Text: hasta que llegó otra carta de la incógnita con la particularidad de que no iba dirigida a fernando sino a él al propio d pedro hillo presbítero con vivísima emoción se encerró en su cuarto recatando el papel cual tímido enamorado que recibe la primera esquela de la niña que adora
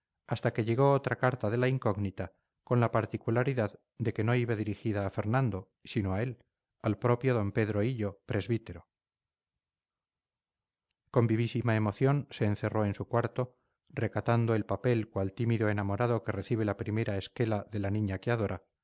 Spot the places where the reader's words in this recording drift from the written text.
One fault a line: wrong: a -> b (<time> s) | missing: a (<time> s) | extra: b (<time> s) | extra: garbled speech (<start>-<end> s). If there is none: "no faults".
no faults